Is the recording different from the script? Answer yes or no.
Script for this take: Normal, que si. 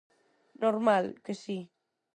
no